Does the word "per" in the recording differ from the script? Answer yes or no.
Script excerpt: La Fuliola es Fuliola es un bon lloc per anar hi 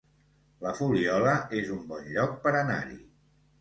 no